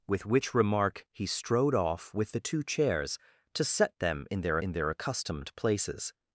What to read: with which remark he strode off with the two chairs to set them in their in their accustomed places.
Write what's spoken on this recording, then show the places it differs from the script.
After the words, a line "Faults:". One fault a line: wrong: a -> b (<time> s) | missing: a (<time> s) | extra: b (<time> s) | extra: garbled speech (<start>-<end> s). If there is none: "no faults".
with which remark he strode off with the two chairs to set them in their in their accustomed places.
Faults:
no faults